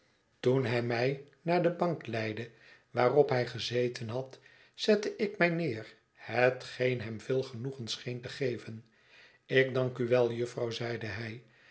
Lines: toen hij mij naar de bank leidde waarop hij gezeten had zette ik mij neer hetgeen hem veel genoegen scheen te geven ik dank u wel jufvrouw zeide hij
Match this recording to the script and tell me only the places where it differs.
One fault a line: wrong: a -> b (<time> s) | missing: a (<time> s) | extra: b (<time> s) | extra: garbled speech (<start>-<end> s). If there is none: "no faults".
no faults